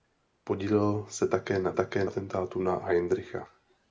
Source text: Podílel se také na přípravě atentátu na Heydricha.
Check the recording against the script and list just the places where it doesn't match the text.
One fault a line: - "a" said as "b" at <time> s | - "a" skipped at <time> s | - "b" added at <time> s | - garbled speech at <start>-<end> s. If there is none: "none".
- "přípravě" said as "také" at 1.7 s